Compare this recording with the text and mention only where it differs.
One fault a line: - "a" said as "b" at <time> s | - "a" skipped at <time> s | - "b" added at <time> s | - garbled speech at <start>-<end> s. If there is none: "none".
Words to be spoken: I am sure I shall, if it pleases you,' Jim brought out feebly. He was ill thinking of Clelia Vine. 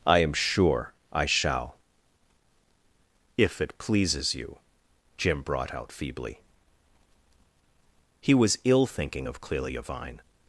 none